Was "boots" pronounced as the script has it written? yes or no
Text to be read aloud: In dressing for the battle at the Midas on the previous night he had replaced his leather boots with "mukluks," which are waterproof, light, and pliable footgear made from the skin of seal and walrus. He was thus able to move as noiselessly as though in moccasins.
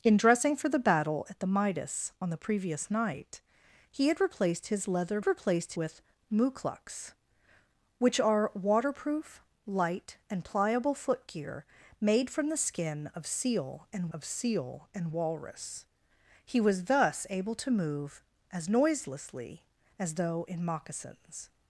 no